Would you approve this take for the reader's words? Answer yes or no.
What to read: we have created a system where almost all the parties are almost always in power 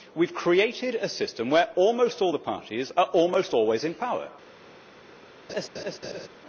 yes